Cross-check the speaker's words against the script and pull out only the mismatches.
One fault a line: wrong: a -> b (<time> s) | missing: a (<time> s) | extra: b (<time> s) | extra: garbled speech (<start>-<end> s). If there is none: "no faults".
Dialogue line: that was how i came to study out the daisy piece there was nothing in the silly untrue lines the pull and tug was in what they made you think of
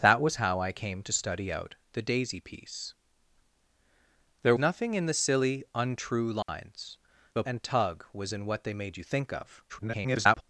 missing: was (4.5 s)
missing: pull (7.4 s)
extra: garbled speech (9.7-10.4 s)